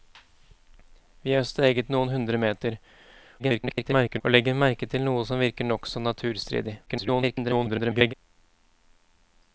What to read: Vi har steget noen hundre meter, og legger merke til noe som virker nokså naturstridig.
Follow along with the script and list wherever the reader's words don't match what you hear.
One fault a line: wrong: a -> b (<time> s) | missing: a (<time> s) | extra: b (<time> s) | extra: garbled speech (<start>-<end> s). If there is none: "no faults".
extra: garbled speech (3.4-4.2 s)
extra: garbled speech (6.9-8.1 s)